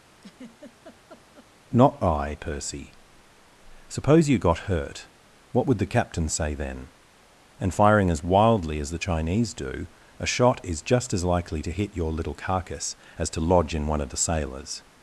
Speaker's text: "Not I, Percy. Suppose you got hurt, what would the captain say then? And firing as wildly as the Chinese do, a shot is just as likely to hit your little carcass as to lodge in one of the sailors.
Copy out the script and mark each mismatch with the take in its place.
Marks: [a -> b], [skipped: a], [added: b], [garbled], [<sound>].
[laugh] "Not I, Percy. Suppose you got hurt, what would the captain say then? And firing as wildly as the Chinese do, a shot is just as likely to hit your little carcass as to lodge in one of the sailors.